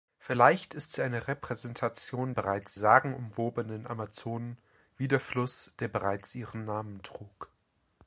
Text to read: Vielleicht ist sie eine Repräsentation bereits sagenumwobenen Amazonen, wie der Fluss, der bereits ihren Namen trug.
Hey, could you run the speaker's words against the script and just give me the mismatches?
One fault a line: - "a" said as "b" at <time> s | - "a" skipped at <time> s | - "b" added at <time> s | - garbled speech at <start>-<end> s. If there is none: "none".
none